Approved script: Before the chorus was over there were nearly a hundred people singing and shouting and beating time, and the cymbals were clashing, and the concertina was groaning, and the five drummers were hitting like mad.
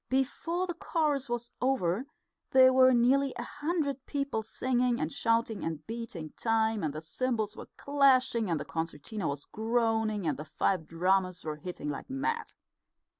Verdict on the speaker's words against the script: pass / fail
pass